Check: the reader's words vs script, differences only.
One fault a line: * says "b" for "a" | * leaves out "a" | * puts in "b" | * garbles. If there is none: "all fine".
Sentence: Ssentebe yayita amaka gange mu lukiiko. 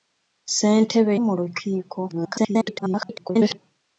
* leaves out "yayita amaka gange"
* garbles